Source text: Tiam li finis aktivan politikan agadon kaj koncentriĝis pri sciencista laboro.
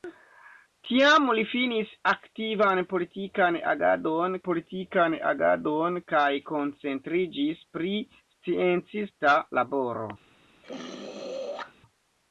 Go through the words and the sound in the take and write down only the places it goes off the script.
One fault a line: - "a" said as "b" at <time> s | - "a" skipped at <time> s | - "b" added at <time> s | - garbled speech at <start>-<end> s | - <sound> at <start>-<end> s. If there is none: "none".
- "politikan agadon" added at 4.5 s
- throat clearing at 10.6-11.7 s